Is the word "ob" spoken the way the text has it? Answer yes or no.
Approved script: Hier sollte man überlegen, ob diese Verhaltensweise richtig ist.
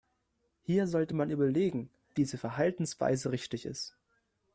no